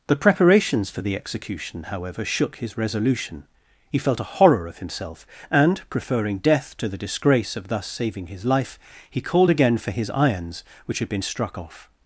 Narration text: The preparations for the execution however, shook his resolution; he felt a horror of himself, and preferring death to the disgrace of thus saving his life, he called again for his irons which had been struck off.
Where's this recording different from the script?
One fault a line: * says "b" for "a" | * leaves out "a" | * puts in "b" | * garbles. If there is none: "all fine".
all fine